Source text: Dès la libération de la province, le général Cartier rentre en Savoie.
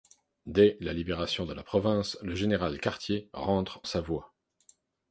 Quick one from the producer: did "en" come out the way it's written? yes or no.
no